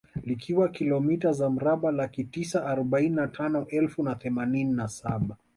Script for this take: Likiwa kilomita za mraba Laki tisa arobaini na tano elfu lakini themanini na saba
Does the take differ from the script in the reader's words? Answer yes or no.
yes